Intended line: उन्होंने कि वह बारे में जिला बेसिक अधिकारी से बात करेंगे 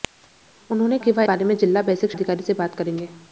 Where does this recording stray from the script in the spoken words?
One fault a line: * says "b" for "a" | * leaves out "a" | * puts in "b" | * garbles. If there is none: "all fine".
all fine